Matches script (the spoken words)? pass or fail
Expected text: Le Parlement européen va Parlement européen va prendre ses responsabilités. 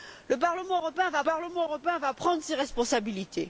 pass